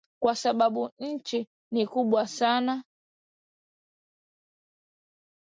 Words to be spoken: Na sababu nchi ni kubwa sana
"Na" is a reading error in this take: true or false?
true